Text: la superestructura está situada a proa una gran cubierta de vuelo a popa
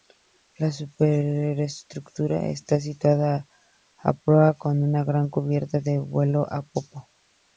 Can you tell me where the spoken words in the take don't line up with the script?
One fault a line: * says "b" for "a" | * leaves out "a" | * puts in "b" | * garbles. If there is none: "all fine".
* puts in "con"